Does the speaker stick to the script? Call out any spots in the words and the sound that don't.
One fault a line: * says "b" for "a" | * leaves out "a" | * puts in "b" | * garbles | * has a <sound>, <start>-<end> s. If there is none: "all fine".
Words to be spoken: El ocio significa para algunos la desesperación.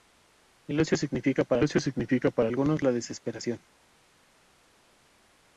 * puts in "ocio significa para"